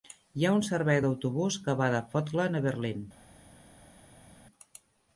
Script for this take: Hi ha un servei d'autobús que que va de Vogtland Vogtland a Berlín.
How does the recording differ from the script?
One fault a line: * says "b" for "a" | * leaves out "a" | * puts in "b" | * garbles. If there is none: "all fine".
* leaves out "que"
* leaves out "Vogtland"